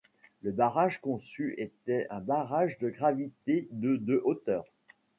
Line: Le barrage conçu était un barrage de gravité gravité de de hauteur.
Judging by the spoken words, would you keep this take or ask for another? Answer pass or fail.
fail